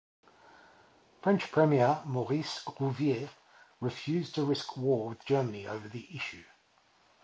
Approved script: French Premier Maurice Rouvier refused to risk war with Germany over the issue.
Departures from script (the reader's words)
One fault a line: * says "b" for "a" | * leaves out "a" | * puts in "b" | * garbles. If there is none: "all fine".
all fine